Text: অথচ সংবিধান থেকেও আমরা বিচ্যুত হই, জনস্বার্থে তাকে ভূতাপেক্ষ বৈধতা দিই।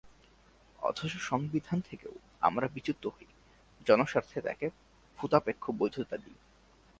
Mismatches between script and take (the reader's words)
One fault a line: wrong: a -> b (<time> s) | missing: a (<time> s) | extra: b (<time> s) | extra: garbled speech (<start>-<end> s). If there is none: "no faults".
no faults